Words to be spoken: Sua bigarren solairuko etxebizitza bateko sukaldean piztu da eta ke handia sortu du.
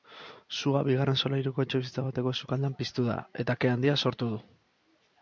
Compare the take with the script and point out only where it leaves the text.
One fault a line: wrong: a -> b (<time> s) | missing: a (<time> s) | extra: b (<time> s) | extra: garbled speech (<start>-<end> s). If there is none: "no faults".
no faults